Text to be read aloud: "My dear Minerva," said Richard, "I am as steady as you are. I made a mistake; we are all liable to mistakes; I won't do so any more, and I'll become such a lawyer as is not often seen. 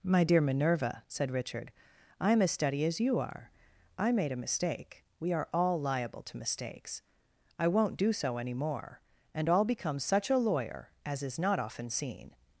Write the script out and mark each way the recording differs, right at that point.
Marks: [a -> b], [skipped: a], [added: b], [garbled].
"My dear Minerva," said Richard, "I am as steady as you are. I made a mistake; we are all liable to mistakes; I won't do so any more, and I'll become such a lawyer as is not often seen.